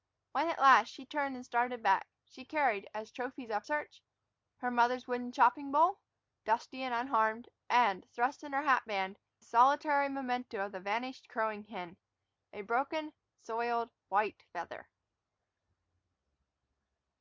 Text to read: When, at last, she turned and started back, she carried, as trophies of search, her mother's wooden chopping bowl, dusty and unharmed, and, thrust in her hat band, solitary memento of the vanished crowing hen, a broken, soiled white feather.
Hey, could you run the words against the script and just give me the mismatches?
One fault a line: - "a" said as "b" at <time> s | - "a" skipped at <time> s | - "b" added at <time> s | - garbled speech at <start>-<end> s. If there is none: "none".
none